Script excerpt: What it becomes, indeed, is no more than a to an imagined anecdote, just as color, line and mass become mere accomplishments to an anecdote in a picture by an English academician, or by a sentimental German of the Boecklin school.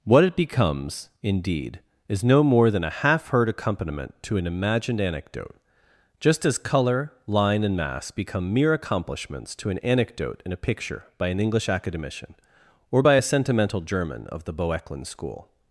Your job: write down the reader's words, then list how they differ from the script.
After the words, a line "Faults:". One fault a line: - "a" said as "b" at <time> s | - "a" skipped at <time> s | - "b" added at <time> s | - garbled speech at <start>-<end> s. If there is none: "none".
What it becomes, indeed, is no more than a half heard accompaniment to an imagined anecdote, just as color, line and mass become mere accomplishments to an anecdote in a picture by an English academician, or by a sentimental German of the Boecklin school.
Faults:
- "half heard accompaniment" added at 2.9 s